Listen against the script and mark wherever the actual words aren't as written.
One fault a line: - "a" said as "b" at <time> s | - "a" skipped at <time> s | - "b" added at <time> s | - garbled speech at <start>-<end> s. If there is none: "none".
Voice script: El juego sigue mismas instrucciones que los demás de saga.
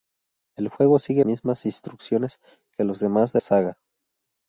none